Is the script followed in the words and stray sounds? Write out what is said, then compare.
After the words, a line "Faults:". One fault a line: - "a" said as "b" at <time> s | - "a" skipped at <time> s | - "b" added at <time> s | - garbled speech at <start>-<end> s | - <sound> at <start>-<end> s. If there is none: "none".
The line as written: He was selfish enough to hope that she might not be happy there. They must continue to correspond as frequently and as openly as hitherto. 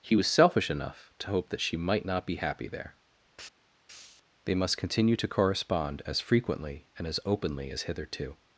He was selfish enough to hope that she might not be happy there. They must continue to correspond as frequently and as openly as hitherto.
Faults:
none